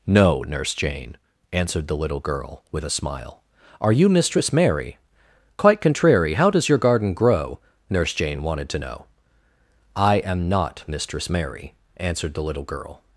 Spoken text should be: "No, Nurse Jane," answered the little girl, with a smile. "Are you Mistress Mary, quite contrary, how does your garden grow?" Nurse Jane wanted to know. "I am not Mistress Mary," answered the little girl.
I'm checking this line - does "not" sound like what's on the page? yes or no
yes